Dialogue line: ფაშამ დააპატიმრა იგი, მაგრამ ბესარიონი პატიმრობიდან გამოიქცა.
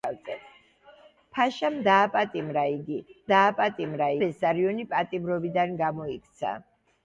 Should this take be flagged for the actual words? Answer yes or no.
yes